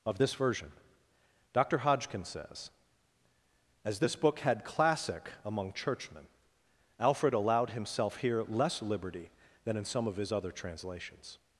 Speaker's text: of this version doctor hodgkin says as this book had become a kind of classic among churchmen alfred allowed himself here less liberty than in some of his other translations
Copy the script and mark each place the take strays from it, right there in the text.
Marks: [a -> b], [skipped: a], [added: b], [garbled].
of this version doctor hodgkin says as this book had [skipped: become a kind of] classic among churchmen alfred allowed himself here less liberty than in some of his other translations